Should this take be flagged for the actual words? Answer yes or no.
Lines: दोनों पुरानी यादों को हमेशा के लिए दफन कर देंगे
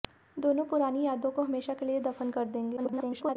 yes